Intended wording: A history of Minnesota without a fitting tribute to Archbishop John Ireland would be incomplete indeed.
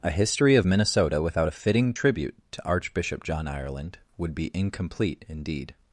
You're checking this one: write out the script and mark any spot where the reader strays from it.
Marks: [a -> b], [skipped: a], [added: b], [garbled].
A history of Minnesota without a fitting tribute to Archbishop John Ireland would be incomplete indeed.